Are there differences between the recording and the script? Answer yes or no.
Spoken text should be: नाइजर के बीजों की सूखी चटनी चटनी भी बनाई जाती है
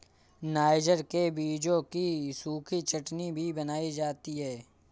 yes